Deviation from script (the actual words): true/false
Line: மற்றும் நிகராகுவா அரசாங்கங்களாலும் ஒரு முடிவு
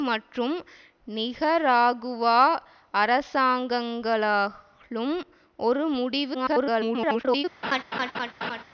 true